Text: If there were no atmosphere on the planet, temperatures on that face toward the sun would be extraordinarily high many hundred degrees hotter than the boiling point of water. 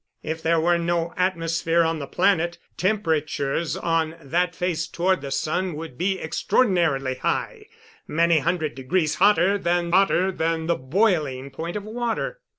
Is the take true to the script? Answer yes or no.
no